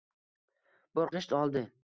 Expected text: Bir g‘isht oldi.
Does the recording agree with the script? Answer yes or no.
yes